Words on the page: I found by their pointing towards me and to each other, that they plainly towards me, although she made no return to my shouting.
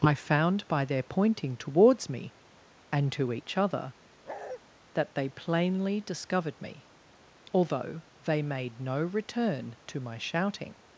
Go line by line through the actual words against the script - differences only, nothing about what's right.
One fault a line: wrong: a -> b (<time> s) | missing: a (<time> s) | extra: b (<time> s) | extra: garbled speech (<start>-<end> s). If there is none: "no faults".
wrong: towards -> discovered (6.0 s)
wrong: she -> they (8.2 s)